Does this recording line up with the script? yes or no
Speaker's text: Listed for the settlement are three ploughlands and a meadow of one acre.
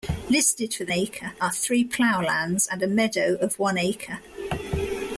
no